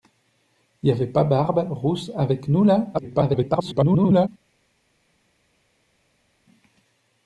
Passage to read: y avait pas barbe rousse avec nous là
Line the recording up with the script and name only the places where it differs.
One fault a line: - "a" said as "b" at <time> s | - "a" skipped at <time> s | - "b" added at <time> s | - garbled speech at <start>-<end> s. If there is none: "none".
- garbled speech at 2.9-4.3 s